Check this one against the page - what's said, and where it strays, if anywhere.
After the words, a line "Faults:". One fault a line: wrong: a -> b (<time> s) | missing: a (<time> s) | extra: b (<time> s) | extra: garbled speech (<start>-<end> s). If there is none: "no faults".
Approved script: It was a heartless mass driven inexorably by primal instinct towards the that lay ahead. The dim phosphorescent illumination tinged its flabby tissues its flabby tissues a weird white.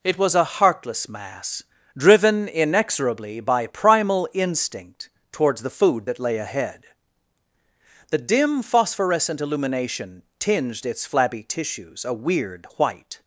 It was a heartless mass driven inexorably by primal instinct towards the food that lay ahead. The dim phosphorescent illumination tinged its flabby tissues a weird white.
Faults:
extra: food (5.7 s)
missing: its flabby tissues (12.1 s)